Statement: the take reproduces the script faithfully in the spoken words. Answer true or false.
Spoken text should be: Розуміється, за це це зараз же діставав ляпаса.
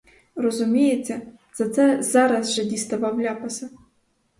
false